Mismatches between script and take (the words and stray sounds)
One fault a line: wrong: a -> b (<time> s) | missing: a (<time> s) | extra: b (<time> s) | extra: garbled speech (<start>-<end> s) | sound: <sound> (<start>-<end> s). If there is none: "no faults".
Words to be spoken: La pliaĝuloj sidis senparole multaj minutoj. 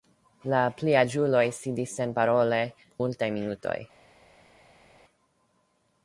no faults